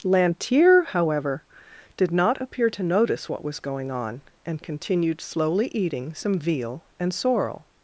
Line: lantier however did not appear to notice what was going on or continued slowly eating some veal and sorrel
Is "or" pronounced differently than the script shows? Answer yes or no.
yes